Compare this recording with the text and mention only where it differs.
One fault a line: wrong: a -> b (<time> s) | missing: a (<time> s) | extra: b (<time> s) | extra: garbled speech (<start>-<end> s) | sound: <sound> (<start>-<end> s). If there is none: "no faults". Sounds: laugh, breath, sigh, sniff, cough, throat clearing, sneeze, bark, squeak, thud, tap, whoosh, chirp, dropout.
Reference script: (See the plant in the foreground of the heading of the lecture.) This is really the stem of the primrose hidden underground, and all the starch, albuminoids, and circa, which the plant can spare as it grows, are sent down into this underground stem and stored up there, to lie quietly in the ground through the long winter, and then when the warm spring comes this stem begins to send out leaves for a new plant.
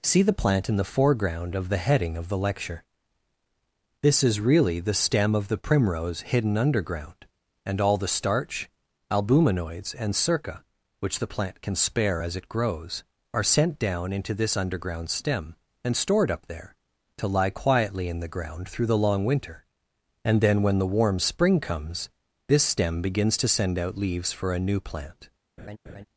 sound: laugh (25.6-26.1 s)